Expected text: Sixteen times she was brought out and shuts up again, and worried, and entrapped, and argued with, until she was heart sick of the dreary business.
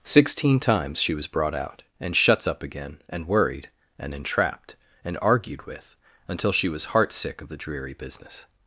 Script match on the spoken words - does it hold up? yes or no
yes